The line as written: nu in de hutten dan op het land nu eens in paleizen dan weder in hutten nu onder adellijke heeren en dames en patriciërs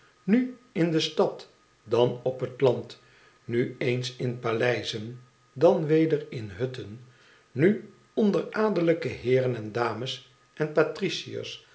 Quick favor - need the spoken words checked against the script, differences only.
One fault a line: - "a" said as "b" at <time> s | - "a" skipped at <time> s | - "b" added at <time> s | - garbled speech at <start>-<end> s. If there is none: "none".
- "hutten" said as "stad" at 1.0 s